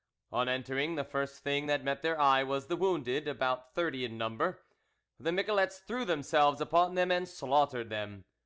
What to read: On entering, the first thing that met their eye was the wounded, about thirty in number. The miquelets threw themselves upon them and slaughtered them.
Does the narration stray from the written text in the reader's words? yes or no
no